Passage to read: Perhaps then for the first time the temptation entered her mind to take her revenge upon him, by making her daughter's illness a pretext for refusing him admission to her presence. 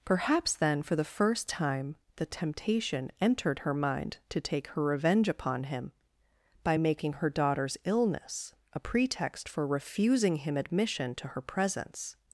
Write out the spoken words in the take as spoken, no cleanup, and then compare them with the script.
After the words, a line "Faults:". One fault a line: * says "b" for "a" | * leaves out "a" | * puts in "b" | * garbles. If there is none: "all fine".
Perhaps then for the first time the temptation entered her mind to take her revenge upon him, by making her daughter's illness a pretext for refusing him admission to her presence.
Faults:
all fine